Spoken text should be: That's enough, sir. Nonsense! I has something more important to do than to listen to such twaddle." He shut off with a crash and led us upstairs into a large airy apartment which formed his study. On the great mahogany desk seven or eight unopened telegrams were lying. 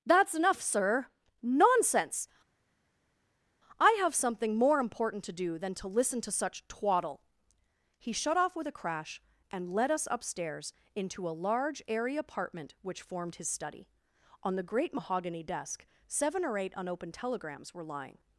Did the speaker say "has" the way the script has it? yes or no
no